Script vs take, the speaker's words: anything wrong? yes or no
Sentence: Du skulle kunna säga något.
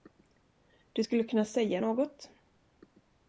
no